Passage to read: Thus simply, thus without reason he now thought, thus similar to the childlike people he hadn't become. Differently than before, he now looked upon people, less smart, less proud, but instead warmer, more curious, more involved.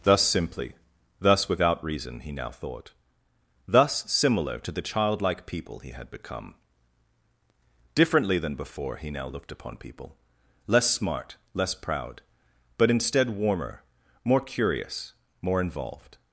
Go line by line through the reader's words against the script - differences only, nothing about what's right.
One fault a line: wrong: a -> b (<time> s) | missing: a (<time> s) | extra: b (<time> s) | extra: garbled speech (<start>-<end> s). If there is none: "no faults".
wrong: hadn't -> had (5.9 s)